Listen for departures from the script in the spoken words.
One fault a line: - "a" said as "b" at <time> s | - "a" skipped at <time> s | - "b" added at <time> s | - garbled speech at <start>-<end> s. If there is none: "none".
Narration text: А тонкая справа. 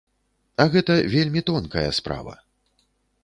- "гэта вельмі" added at 0.8 s